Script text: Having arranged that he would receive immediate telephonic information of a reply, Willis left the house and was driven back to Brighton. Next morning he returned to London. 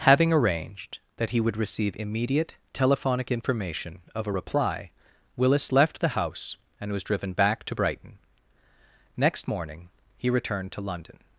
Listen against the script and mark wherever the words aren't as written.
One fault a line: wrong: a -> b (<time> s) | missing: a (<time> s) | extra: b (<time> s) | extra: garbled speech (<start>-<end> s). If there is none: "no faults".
no faults